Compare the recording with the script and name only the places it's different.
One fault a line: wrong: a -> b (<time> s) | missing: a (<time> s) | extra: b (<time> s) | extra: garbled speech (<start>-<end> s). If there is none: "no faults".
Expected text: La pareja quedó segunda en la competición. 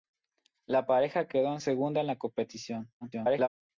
extra: garbled speech (3.0-3.5 s)